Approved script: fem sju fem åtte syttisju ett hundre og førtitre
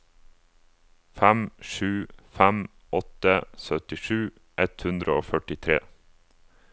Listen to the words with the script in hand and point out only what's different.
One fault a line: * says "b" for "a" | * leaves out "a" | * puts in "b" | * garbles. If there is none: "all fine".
all fine